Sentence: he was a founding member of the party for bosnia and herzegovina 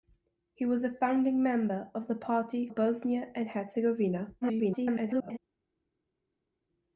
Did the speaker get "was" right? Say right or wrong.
right